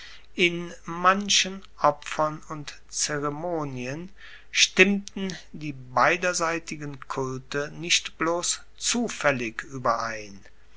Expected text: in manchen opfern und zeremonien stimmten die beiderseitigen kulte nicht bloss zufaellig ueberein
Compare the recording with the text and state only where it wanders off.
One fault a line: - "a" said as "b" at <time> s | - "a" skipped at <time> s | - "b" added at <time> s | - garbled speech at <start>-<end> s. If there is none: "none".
none